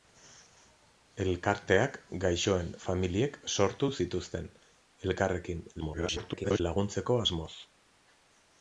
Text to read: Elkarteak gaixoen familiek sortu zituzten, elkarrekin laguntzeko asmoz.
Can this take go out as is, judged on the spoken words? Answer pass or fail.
fail